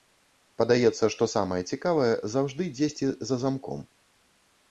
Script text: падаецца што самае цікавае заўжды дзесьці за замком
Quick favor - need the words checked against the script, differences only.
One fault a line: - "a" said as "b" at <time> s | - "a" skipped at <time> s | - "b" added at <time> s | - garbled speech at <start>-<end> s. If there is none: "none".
none